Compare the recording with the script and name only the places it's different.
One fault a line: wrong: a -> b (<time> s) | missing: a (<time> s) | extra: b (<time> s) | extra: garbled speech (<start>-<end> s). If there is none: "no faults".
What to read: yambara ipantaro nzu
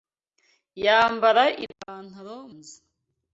no faults